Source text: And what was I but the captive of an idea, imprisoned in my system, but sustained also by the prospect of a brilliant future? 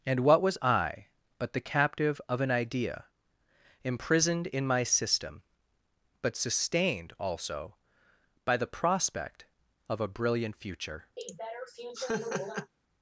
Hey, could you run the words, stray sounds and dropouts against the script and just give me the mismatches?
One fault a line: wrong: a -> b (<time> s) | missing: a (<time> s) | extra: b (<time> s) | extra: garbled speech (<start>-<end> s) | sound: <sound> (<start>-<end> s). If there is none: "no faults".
sound: laugh (11.2-12.7 s)